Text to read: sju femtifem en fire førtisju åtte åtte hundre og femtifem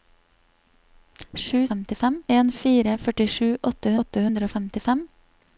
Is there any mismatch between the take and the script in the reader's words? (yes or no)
no